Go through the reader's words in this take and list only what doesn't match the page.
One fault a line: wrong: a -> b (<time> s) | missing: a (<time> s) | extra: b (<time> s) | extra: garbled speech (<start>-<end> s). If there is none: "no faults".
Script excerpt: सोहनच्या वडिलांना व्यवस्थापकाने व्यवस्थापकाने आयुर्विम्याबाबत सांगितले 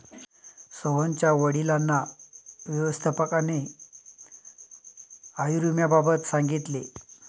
missing: व्यवस्थापकाने (3.6 s)